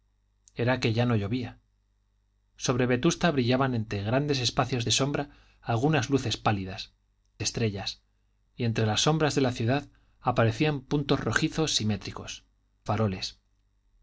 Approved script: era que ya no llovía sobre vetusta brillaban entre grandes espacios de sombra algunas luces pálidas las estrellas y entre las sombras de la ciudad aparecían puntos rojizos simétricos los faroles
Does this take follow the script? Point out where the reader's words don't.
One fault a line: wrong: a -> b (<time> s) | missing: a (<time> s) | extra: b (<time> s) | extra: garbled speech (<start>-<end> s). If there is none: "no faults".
missing: las (6.9 s)
missing: los (12.5 s)